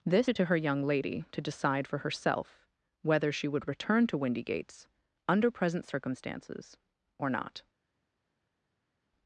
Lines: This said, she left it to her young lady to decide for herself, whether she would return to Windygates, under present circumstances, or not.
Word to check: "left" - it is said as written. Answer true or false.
false